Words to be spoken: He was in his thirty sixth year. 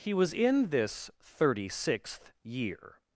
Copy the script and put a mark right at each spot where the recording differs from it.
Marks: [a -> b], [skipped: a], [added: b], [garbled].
He was in [his -> this] thirty sixth year.